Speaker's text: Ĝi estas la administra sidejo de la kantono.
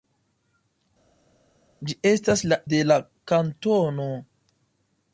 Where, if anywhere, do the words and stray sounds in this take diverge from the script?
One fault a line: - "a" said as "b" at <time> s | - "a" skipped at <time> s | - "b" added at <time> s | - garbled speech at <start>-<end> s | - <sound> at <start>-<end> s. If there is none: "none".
- "administra sidejo" skipped at 2.6 s